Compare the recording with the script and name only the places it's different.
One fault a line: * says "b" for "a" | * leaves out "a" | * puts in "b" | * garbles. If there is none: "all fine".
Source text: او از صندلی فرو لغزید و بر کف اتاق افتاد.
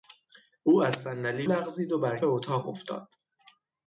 * leaves out "فرو"
* leaves out "کف"